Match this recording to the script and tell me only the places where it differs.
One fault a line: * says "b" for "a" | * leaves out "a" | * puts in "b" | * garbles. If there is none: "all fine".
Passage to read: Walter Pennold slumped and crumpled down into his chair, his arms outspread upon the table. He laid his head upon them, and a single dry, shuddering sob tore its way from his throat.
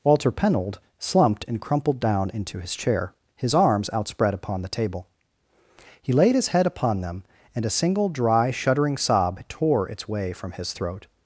all fine